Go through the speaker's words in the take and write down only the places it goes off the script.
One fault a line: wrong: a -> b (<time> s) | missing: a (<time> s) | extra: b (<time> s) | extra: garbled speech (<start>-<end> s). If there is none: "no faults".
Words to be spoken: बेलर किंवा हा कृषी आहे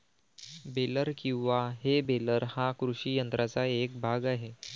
extra: हे बेलर (1.8 s)
extra: यंत्राचा एक भाग (3.2 s)